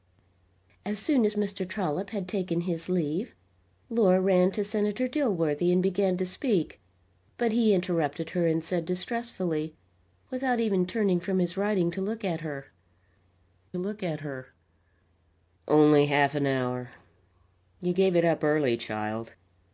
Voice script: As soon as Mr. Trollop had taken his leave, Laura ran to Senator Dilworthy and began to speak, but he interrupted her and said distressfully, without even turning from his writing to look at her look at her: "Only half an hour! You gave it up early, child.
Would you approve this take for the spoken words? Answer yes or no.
yes